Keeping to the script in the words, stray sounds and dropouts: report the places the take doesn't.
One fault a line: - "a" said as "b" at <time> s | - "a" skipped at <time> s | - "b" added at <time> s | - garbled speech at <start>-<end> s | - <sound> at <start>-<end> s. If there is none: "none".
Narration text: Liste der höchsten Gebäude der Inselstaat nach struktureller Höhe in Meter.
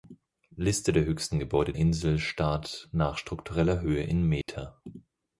- "der" skipped at 1.7 s
- dropout at 4.4-4.5 s